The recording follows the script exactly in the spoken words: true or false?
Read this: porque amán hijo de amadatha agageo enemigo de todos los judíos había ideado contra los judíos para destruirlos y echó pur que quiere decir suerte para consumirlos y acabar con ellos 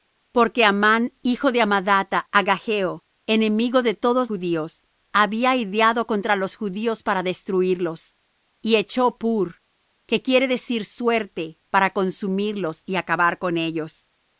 false